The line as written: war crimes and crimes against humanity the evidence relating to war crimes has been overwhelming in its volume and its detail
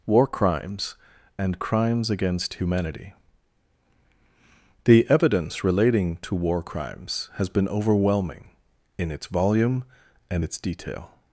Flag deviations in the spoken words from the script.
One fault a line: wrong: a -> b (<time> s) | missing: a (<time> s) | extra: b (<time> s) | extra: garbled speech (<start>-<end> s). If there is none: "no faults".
no faults